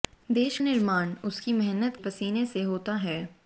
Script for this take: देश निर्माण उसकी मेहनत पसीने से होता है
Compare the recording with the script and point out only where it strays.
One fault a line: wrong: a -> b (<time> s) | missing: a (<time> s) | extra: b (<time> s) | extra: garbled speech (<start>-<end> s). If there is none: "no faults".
no faults